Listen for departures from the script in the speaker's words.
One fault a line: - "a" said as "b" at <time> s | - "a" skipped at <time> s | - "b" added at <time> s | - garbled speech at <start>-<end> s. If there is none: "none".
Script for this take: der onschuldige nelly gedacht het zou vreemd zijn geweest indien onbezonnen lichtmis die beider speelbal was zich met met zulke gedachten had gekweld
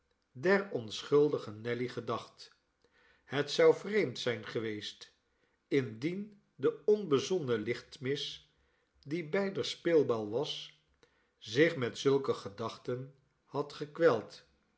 - "de" added at 6.5 s
- "met" skipped at 12.0 s